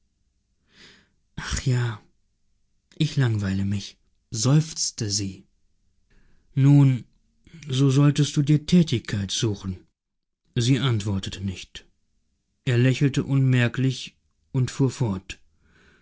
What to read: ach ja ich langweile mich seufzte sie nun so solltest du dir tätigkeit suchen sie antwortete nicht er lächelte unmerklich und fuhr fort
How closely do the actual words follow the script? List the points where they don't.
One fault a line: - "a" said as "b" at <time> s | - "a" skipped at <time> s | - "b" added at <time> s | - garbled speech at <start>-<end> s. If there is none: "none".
none